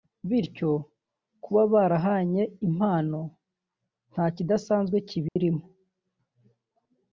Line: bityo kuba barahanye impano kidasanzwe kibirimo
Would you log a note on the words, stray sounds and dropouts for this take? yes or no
yes